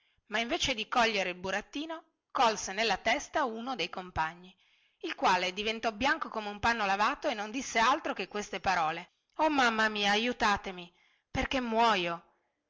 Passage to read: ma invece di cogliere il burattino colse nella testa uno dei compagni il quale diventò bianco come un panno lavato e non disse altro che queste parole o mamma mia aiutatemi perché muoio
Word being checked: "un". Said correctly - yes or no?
yes